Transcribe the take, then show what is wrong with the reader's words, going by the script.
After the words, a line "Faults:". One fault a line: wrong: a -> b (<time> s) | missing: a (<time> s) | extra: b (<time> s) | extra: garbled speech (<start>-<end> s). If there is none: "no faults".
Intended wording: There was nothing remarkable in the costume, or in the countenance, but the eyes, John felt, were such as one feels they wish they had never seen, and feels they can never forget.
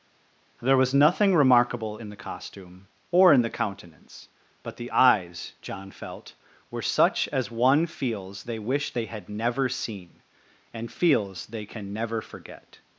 There was nothing remarkable in the costume, or in the countenance, but the eyes, John felt, were such as one feels they wish they had never seen, and feels they can never forget.
Faults:
no faults